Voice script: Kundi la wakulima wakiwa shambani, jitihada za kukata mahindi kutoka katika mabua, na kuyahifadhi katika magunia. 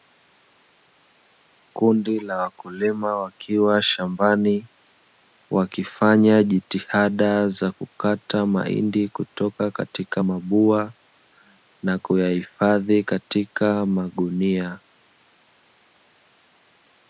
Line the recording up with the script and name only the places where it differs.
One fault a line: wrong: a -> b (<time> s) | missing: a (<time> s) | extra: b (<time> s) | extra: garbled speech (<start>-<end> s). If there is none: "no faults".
extra: wakifanya (5.5 s)